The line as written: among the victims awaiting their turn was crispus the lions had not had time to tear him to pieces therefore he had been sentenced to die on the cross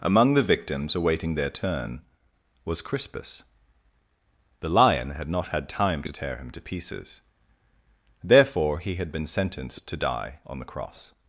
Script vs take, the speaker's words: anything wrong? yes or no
yes